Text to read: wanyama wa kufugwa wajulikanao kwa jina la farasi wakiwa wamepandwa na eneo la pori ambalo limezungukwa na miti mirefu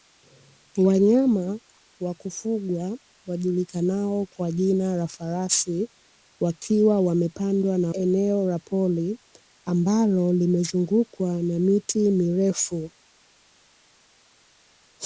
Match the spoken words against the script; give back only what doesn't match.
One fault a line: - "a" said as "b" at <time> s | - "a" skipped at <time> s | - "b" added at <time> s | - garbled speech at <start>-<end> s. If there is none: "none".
none